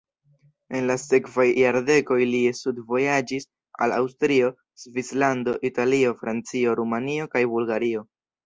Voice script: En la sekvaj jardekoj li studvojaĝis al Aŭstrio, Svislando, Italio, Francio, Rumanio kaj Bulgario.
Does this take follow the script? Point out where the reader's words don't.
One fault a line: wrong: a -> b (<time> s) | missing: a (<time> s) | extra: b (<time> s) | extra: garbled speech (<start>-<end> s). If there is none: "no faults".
no faults